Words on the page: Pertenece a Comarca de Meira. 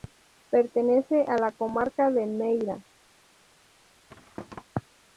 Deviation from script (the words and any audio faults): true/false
true